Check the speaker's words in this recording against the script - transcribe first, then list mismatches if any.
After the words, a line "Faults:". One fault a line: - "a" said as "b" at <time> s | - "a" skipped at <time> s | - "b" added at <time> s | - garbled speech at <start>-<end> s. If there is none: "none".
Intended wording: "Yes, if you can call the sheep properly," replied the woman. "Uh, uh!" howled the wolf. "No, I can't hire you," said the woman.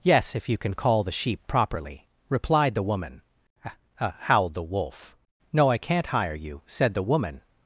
"Yes, if you can call the sheep properly," replied the woman. "Uh, uh!" howled the wolf. "No, I can't hire you," said the woman.
Faults:
none